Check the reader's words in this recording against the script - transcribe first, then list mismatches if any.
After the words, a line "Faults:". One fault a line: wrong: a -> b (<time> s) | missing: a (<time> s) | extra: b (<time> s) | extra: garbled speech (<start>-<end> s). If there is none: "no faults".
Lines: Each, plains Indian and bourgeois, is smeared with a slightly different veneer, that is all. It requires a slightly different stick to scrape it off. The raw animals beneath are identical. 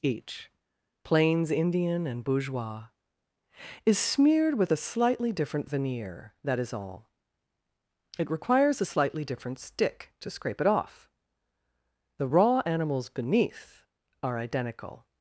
Each, plains Indian and bourgeois, is smeared with a slightly different veneer, that is all. It requires a slightly different stick to scrape it off. The raw animals beneath are identical.
Faults:
no faults